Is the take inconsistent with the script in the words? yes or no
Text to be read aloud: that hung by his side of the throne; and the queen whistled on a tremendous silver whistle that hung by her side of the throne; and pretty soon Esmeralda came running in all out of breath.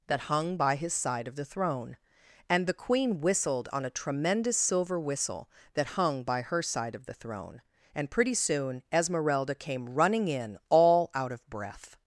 no